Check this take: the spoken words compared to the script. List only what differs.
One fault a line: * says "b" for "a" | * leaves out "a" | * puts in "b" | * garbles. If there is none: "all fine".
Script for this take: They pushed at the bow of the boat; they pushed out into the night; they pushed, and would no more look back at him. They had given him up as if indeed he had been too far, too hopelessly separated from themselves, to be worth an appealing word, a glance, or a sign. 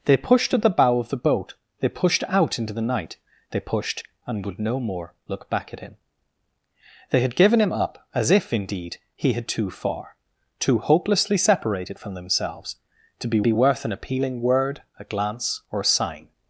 * leaves out "been"
* puts in "be"